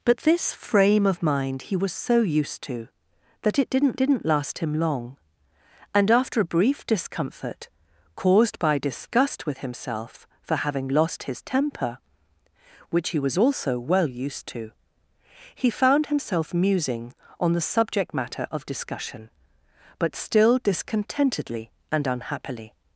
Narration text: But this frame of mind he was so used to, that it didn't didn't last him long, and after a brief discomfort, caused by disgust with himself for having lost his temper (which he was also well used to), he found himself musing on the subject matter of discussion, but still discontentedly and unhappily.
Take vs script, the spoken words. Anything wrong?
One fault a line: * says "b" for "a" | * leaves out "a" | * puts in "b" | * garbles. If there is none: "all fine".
all fine